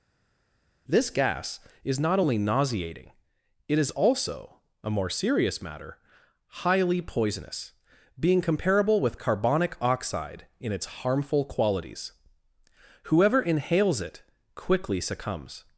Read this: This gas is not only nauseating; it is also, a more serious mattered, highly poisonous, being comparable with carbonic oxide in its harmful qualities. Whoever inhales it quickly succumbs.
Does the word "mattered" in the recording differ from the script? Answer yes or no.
yes